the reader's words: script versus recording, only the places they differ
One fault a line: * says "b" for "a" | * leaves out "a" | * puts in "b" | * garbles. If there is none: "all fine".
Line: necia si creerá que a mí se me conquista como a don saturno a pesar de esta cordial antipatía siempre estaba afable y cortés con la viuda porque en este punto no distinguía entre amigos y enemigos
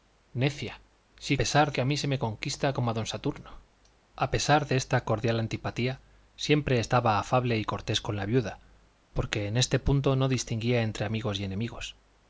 * says "pesar" for "creerá"